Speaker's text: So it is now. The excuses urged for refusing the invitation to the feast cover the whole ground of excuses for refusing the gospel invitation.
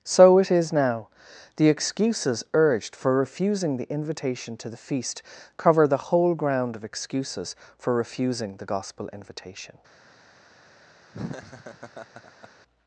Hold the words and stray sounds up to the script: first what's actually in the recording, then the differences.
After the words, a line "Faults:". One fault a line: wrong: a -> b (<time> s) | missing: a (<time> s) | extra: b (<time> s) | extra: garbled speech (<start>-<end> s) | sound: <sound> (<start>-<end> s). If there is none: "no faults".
So it is now. The excuses urged for refusing the invitation to the feast cover the whole ground of excuses for refusing the gospel invitation.
Faults:
sound: laugh (11.1-12.5 s)